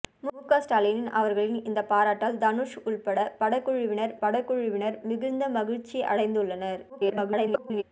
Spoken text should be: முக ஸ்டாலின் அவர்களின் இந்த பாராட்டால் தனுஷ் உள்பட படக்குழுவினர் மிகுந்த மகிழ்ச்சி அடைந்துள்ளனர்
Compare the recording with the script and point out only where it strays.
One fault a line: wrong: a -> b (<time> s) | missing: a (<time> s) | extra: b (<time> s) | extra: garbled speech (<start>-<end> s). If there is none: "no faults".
extra: படக்குழுவினர் (4.2 s)
extra: garbled speech (6.9-7.8 s)